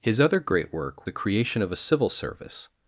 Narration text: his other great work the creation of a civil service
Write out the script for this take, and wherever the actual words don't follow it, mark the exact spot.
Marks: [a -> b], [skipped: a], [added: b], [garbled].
his other great work the creation of a civil service